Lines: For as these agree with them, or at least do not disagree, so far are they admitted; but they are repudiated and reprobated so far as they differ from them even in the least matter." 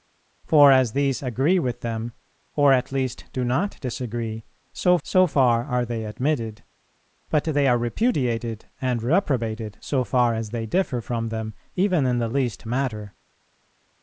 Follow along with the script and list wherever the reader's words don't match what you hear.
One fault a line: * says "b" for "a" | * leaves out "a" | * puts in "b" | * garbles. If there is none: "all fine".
* puts in "so"